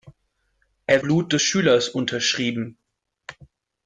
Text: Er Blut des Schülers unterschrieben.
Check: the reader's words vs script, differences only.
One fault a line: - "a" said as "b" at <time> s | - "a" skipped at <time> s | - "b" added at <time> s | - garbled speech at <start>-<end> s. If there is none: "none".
none